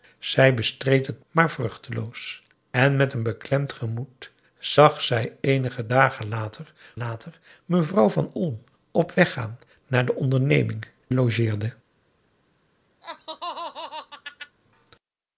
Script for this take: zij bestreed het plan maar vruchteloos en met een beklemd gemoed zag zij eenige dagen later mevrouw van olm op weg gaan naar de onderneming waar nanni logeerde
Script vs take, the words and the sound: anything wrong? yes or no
yes